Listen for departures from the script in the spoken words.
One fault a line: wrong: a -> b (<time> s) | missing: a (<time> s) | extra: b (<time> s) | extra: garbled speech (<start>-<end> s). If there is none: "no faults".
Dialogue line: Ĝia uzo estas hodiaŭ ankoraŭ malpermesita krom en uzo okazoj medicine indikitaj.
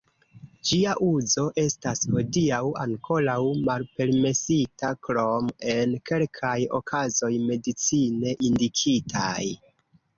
wrong: uzo -> kelkaj (6.1 s)